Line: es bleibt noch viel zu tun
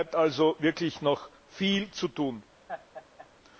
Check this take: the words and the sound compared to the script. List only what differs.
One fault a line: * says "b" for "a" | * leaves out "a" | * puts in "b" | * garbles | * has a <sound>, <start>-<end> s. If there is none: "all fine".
* puts in "also wirklich"
* has a laugh, 2.7-3.3 s